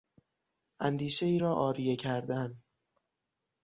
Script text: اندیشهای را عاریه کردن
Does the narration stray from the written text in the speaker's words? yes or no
no